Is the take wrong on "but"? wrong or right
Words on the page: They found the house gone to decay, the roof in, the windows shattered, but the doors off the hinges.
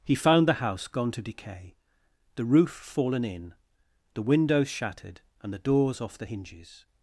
wrong